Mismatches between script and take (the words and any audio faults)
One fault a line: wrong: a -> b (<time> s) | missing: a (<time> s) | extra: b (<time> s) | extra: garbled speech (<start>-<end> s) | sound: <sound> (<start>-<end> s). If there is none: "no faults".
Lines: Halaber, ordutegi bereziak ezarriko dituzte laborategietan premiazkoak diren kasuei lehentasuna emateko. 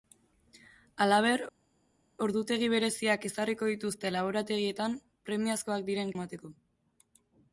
missing: kasuei lehentasuna (6.1 s)